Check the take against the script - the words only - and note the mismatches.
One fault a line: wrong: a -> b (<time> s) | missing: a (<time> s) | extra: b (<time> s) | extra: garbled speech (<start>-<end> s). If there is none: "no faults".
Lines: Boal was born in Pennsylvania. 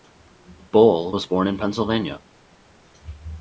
no faults